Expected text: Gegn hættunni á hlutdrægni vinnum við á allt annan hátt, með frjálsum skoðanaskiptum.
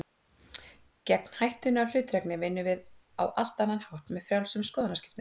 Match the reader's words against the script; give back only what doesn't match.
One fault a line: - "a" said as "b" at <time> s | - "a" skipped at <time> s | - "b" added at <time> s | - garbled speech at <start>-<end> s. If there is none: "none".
none